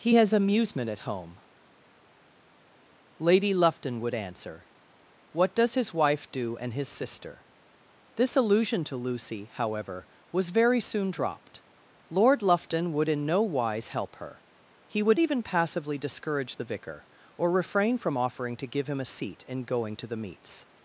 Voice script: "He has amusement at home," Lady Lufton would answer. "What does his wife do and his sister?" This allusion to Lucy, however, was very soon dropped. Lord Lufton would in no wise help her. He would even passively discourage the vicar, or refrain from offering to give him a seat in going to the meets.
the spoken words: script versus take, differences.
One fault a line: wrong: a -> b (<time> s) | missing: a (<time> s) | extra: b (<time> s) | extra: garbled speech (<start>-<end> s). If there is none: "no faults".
no faults